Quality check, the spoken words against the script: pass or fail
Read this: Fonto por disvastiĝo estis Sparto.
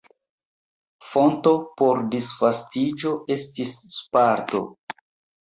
pass